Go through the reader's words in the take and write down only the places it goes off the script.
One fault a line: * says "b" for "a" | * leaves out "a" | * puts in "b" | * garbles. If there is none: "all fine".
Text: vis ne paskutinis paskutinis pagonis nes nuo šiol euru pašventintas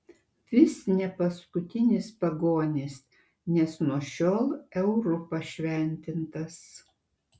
* leaves out "paskutinis"